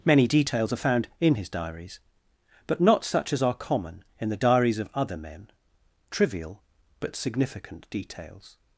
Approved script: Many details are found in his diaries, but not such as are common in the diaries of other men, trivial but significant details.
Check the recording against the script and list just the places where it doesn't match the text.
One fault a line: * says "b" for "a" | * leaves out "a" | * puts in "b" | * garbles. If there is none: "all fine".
all fine